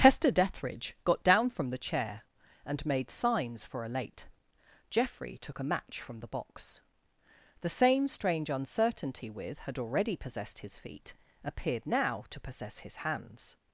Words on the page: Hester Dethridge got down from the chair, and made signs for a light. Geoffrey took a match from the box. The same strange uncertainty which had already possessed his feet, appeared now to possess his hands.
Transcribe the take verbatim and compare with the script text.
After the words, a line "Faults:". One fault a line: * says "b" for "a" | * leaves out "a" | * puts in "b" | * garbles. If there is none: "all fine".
Hester Dethridge got down from the chair, and made signs for a late. Geoffrey took a match from the box. The same strange uncertainty with had already possessed his feet, appeared now to possess his hands.
Faults:
* says "late" for "light"
* says "with" for "which"